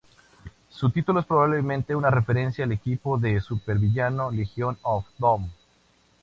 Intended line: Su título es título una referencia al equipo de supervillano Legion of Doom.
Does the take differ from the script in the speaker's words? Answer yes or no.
yes